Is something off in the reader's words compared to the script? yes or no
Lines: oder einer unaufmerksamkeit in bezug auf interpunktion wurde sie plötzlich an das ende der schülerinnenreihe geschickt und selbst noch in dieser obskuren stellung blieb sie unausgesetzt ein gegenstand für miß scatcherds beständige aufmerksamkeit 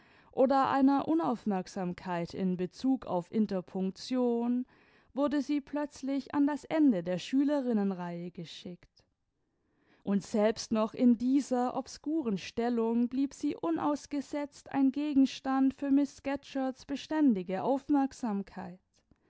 no